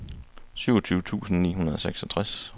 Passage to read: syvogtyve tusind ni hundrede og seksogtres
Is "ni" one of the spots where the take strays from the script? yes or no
no